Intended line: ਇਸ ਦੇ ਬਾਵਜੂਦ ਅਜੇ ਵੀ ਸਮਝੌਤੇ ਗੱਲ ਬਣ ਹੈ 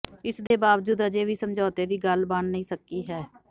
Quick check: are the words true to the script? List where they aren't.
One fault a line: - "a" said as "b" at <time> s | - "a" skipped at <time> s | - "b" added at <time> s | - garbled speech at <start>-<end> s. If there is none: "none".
- "ਦੀ" added at 1.9 s
- "ਨਹੀਂ ਸਕੀ" added at 2.5 s